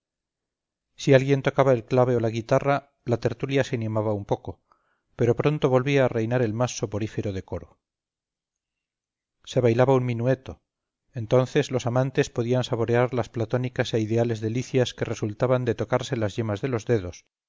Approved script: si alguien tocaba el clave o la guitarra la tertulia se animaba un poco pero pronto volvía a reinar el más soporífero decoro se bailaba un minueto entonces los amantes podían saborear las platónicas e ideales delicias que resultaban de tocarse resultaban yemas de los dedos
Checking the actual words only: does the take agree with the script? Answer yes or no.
no